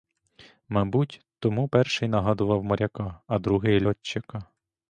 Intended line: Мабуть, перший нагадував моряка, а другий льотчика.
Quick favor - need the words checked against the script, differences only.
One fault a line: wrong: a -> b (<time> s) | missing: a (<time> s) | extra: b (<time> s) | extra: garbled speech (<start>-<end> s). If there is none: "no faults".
extra: тому (1.4 s)